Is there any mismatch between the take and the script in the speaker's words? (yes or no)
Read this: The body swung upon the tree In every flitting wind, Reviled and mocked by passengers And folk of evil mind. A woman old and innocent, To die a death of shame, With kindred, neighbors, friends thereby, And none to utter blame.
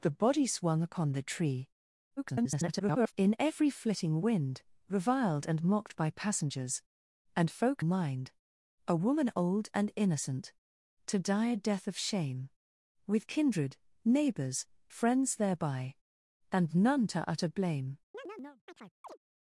yes